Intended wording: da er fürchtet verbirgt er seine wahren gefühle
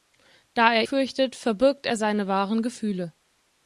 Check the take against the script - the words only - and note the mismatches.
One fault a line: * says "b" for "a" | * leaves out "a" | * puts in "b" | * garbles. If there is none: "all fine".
all fine